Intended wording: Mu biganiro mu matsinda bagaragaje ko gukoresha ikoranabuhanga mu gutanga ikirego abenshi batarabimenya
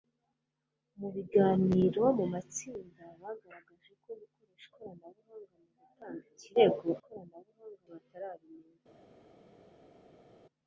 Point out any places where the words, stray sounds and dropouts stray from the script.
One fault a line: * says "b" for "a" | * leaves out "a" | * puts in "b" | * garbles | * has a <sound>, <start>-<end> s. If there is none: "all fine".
* says "ikoranabuhanga" for "abenshi"